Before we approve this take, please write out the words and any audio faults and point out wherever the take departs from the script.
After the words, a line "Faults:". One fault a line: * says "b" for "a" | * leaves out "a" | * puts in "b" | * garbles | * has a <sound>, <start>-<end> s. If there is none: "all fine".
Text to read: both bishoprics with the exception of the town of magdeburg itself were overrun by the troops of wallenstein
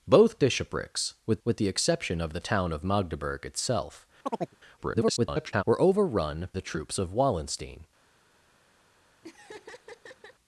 both bishoprics with with the exception of the town of magdeburg itself [garbled] were overrun the troops of wallenstein
Faults:
* puts in "with"
* has a chirp, 4.2-4.6 s
* garbles
* leaves out "by"
* has a laugh, 9.2-10.4 s